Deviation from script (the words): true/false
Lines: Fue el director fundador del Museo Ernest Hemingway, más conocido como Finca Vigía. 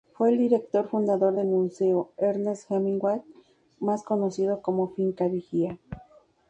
false